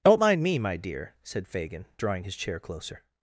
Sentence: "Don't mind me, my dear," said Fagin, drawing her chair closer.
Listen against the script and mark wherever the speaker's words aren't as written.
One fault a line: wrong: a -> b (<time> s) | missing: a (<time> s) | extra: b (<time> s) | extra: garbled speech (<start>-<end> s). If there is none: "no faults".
wrong: her -> his (2.2 s)